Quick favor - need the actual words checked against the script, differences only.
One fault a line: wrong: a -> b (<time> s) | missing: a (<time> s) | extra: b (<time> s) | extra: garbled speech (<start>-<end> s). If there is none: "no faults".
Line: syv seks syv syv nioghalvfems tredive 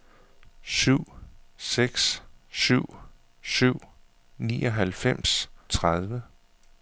no faults